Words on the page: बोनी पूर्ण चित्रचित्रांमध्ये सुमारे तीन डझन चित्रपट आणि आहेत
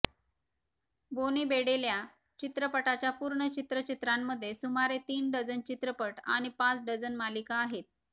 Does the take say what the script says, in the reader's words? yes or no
no